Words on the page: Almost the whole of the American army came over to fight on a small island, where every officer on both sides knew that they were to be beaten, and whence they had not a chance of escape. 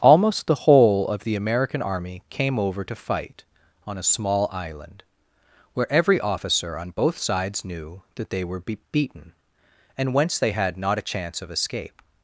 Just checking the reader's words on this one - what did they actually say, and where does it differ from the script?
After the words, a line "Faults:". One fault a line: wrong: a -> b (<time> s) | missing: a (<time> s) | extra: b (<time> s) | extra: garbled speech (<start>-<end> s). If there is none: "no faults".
Almost the whole of the American army came over to fight on a small island, where every officer on both sides knew that they were be beaten, and whence they had not a chance of escape.
Faults:
missing: to (8.6 s)